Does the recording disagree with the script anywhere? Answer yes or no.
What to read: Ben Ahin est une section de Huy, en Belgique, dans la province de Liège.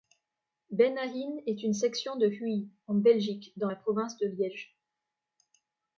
no